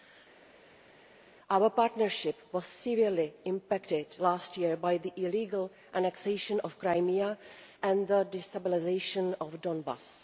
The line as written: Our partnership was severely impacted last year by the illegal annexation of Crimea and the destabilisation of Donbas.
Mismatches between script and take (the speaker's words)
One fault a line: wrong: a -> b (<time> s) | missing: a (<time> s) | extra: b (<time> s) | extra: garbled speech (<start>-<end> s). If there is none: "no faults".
no faults